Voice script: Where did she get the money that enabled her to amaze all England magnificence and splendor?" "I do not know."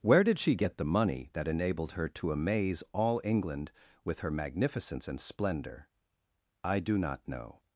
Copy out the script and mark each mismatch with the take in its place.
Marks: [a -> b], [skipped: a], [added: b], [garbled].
Where did she get the money that enabled her to amaze all England [added: with her] magnificence and splendor?" "I do not know."